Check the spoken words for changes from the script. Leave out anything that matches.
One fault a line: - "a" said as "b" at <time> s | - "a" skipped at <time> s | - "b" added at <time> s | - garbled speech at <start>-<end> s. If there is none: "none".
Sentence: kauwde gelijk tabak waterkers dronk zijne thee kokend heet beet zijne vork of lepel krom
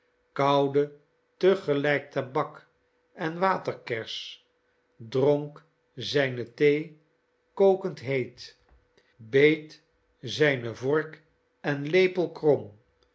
- "te" added at 1.4 s
- "en" added at 3.1 s
- "of" said as "en" at 11.6 s